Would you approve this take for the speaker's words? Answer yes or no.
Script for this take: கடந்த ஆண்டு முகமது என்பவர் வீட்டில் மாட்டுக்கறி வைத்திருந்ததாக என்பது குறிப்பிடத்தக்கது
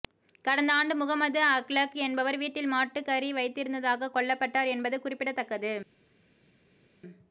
no